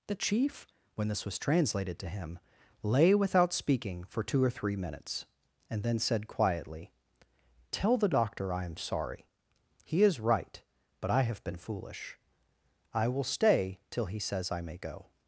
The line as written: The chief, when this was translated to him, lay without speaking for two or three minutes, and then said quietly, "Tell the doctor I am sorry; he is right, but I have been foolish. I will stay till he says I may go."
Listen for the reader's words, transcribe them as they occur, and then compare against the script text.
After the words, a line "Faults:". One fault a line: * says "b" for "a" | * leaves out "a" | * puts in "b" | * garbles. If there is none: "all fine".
The chief, when this was translated to him, lay without speaking for two or three minutes, and then said quietly, "Tell the doctor I am sorry; he is right, but I have been foolish. I will stay till he says I may go."
Faults:
all fine